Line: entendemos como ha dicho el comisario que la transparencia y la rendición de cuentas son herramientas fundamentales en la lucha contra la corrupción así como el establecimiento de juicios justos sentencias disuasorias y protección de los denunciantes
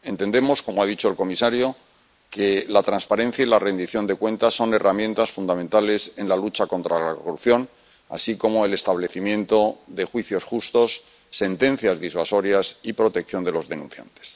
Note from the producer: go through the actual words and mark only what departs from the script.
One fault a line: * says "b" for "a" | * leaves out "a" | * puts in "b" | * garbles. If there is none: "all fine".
all fine